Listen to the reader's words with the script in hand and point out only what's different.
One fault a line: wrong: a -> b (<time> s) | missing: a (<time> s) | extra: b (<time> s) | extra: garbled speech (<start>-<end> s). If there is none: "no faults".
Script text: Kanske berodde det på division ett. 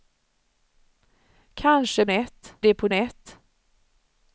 wrong: berodde -> ett (2.1 s)
missing: division (2.9 s)